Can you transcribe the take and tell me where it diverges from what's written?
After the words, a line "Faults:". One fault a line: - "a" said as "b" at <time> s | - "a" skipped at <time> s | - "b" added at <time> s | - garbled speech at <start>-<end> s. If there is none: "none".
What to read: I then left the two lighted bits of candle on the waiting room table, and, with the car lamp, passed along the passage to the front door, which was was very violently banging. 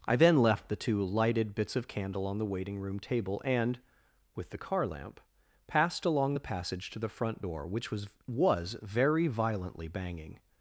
I then left the two lighted bits of candle on the waiting room table, and, with the car lamp, passed along the passage to the front door, which was was very violently banging.
Faults:
none